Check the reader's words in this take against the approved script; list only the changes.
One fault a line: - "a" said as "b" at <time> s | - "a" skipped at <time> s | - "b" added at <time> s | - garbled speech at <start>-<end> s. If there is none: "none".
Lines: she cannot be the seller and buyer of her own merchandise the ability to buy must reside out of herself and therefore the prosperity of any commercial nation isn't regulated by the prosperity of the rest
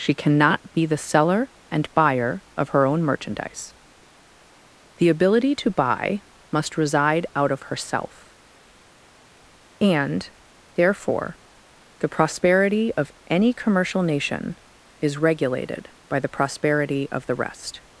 - "isn't" said as "is" at 15.0 s